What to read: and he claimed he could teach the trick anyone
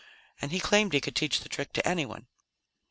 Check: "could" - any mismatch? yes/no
no